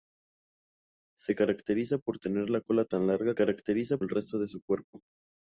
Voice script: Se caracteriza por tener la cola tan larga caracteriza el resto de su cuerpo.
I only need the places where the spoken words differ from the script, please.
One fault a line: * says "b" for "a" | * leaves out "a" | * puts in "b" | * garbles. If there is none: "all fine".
all fine